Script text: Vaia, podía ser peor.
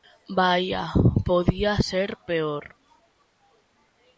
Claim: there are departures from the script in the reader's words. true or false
false